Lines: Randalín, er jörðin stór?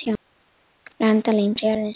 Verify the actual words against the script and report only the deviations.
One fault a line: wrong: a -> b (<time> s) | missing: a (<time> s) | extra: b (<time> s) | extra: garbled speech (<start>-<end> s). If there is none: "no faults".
no faults